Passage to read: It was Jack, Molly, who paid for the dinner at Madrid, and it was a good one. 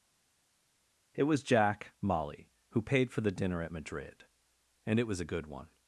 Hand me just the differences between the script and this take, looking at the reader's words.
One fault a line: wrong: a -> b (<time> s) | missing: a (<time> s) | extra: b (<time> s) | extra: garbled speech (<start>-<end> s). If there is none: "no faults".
no faults